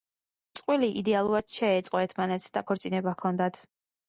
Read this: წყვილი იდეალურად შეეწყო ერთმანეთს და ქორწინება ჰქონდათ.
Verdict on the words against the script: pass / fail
pass